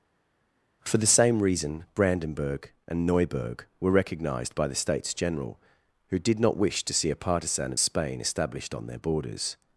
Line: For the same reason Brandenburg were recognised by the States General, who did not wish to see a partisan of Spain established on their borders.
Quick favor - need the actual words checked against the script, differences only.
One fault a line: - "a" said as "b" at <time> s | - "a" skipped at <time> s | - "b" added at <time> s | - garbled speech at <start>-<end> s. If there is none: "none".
- "and Neuburg" added at 2.9 s